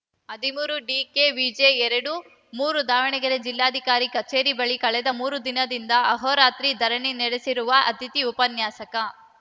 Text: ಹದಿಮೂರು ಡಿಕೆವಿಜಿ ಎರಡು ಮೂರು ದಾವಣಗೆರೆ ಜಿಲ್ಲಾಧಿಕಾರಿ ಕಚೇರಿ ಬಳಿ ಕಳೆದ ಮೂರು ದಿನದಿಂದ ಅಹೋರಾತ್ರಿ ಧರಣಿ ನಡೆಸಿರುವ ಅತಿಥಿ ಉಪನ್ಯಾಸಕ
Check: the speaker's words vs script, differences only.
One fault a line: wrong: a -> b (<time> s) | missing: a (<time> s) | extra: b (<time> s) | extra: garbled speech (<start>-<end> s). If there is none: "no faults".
no faults